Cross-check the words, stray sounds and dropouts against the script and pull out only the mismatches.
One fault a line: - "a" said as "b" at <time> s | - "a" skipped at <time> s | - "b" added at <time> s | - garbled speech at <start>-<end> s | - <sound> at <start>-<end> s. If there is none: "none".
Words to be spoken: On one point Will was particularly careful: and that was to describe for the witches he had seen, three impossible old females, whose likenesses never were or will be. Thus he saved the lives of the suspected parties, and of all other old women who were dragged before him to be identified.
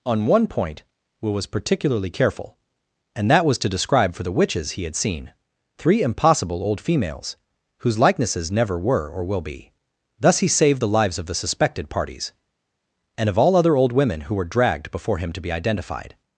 none